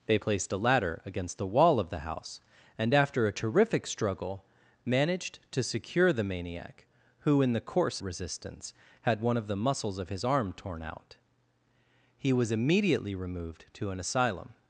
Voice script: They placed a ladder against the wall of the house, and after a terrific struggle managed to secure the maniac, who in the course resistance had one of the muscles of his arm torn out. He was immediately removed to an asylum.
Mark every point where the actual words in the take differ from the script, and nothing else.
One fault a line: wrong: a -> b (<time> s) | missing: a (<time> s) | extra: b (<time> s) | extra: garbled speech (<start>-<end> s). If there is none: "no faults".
no faults